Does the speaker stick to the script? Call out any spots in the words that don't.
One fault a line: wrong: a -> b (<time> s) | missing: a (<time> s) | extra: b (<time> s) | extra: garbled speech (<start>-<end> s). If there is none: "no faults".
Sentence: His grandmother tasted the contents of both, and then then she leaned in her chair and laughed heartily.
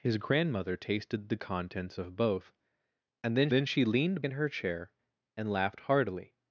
no faults